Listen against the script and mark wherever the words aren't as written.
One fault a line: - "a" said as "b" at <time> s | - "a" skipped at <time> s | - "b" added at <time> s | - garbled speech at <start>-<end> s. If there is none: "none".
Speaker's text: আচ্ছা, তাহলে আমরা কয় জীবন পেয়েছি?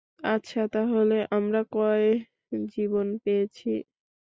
none